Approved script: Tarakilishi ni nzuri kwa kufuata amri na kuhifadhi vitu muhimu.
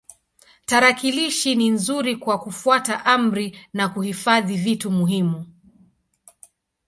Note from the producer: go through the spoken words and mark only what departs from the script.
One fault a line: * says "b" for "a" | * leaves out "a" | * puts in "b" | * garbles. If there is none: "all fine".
all fine